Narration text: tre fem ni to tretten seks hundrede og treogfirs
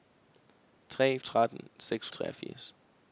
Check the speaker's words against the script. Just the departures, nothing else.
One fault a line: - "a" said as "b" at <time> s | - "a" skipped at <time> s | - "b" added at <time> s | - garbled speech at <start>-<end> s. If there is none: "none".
- "fem ni to" skipped at 1.2 s
- "hundrede" skipped at 2.1 s